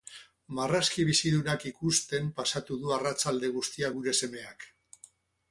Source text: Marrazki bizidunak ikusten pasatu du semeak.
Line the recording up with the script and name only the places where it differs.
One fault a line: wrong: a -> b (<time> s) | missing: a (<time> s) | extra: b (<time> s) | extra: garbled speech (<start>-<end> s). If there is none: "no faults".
extra: arratsalde guztia gure (3.0 s)